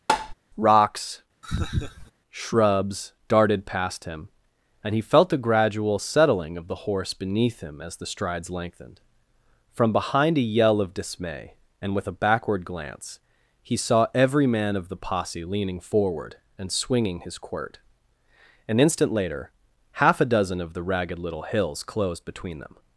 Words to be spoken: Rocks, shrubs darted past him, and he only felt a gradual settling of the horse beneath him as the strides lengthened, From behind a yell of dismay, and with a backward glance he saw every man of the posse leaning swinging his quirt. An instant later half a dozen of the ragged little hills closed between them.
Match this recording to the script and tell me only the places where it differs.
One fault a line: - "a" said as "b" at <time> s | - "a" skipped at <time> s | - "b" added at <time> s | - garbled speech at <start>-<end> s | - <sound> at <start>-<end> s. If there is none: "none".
- tap at 0.1-0.3 s
- laugh at 1.4-2.1 s
- "only" skipped at 5.0 s
- "forward and" added at 15.8 s